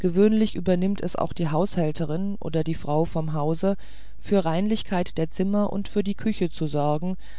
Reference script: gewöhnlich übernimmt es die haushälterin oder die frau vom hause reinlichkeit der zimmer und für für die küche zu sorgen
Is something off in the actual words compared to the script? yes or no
yes